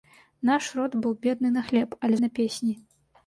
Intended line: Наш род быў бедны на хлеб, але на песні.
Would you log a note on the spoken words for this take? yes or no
no